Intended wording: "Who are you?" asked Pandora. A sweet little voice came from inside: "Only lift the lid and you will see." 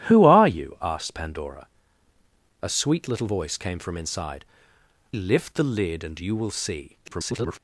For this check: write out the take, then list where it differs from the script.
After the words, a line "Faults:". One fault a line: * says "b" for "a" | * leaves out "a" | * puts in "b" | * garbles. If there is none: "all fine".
"Who are you?" asked Pandora. A sweet little voice came from inside: "Lift the lid and you will see." [garbled]
Faults:
* leaves out "Only"
* garbles